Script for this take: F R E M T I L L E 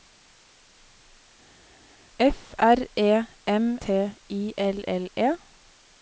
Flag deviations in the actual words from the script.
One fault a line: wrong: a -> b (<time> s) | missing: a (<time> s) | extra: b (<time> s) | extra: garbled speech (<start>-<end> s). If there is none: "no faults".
no faults